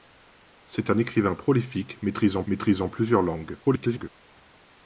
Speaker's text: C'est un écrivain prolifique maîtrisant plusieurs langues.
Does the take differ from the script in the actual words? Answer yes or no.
yes